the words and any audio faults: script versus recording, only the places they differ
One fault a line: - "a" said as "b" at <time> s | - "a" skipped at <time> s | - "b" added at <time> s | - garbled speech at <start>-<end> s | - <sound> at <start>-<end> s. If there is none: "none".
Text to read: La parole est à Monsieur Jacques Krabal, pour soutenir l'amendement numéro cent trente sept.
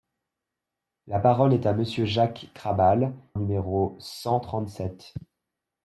- "pour soutenir l'amendement" skipped at 3.1 s